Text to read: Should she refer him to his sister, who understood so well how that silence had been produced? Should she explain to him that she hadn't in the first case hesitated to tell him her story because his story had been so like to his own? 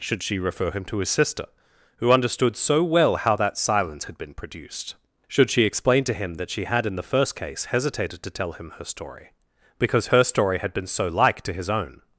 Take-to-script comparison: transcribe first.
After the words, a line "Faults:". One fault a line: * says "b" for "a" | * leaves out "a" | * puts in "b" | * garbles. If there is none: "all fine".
Should she refer him to his sister, who understood so well how that silence had been produced? Should she explain to him that she had in the first case hesitated to tell him her story because her story had been so like to his own?
Faults:
* says "had" for "hadn't"
* says "her" for "his"